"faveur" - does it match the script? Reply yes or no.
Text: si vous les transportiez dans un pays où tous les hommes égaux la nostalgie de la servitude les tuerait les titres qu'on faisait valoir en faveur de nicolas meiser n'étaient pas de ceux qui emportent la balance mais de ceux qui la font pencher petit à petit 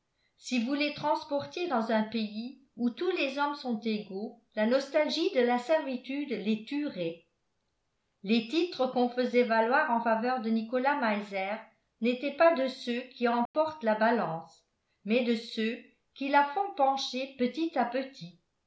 yes